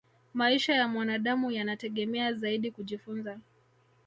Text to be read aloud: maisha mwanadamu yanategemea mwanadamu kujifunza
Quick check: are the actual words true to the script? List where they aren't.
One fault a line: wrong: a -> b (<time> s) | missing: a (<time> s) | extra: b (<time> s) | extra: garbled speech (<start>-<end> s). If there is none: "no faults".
extra: ya (0.8 s)
wrong: mwanadamu -> zaidi (2.3 s)